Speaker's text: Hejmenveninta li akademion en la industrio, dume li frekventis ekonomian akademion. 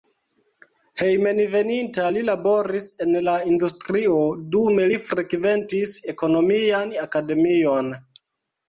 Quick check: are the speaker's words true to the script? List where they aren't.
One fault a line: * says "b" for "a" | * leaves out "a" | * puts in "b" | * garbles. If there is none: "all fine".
* says "laboris" for "akademion"